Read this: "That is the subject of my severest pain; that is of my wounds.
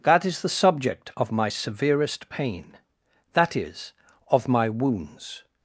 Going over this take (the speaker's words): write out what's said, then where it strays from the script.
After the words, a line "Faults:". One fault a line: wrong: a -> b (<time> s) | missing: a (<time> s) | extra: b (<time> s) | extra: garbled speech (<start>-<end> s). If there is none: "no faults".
"That is the subject of my severest pain; that is of my wounds.
Faults:
no faults